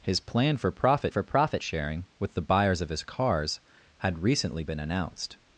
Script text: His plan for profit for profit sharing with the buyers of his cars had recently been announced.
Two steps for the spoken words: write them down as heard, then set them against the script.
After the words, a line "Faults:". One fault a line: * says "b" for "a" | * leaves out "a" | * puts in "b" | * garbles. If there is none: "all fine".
His plan for profit for profit sharing with the buyers of his cars had recently been announced.
Faults:
all fine